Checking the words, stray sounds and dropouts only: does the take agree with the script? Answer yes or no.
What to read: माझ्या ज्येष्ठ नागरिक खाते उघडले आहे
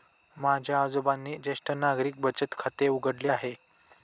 no